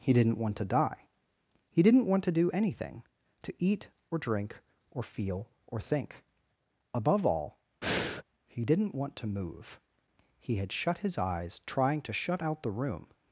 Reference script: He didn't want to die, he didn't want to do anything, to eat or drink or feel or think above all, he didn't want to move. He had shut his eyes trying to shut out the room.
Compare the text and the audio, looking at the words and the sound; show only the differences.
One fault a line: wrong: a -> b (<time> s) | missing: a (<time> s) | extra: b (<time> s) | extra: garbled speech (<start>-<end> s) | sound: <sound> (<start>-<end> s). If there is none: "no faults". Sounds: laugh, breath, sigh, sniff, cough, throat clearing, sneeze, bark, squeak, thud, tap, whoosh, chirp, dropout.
sound: breath (7.8-8.2 s)